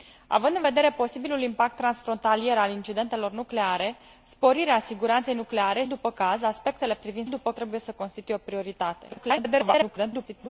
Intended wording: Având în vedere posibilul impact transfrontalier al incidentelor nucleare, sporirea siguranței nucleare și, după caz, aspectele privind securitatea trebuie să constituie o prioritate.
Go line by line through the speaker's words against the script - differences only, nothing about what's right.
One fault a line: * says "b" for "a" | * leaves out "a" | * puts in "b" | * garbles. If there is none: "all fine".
* leaves out "și"
* says "după" for "securitatea"
* garbles